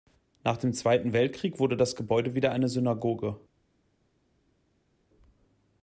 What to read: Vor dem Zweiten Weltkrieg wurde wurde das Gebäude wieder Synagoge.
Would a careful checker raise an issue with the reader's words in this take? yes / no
yes